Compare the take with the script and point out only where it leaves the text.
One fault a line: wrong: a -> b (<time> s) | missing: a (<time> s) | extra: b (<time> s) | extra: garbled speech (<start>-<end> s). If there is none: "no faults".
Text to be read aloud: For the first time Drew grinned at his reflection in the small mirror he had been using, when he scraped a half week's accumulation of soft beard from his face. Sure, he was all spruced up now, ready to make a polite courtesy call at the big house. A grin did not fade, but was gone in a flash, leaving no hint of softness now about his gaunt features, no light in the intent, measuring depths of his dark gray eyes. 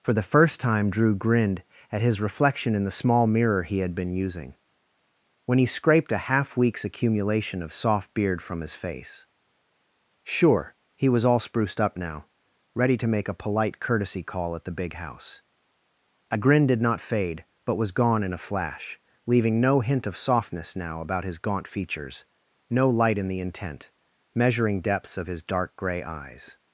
no faults